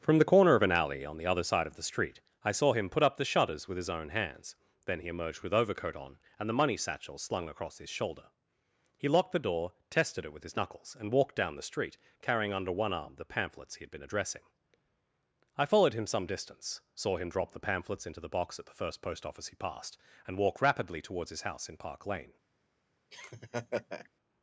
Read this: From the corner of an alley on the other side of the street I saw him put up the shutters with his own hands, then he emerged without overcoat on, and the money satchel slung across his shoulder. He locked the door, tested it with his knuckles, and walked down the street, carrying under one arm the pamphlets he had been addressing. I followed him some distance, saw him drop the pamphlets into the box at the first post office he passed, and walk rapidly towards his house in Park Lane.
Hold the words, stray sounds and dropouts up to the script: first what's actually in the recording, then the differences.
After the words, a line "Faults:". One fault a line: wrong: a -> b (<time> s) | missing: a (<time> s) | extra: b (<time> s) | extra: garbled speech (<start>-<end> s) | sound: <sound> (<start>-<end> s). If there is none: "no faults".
From the corner of an alley on the other side of the street I saw him put up the shutters with his own hands, then he emerged with overcoat on, and the money satchel slung across his shoulder. He locked the door, tested it with his knuckles, and walked down the street, carrying under one arm the pamphlets he had been addressing. I followed him some distance, saw him drop the pamphlets into the box at the first post office he passed, and walk rapidly towards his house in Park Lane.
Faults:
wrong: without -> with (5.4 s)
sound: laugh (23.1-24.1 s)